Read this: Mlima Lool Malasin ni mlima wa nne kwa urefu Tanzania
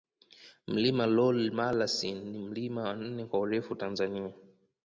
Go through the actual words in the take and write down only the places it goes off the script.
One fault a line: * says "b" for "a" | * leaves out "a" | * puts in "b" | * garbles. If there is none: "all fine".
all fine